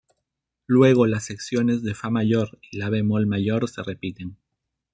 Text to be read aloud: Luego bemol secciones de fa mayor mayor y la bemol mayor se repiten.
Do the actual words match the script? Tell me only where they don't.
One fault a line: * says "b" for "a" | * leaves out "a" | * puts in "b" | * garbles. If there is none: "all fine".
* says "las" for "bemol"
* leaves out "mayor"